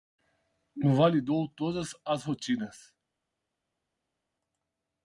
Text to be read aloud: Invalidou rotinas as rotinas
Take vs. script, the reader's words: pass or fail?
fail